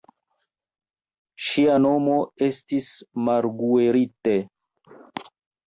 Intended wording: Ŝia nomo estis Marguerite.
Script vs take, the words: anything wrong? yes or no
no